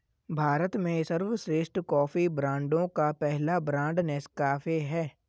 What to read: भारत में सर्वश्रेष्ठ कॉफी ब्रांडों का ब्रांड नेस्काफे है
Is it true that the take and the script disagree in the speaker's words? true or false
true